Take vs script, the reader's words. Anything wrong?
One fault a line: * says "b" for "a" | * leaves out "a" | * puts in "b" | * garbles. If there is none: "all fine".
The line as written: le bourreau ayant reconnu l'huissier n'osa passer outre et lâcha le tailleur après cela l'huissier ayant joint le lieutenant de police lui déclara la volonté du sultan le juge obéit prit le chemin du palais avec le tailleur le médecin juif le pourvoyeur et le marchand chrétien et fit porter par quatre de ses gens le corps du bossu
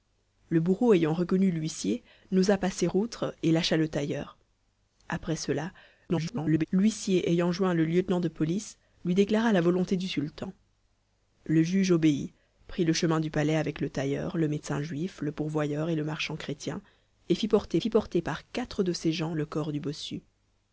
* garbles
* puts in "fit porter"